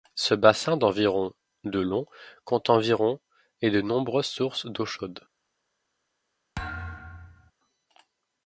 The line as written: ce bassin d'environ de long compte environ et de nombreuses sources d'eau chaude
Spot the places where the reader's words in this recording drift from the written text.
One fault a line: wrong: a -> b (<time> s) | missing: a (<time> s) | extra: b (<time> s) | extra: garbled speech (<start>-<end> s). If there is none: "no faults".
no faults